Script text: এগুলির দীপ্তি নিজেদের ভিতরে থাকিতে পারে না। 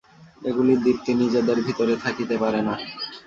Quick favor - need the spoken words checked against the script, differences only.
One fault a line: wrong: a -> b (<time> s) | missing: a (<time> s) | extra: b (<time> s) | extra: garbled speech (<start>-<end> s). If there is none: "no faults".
no faults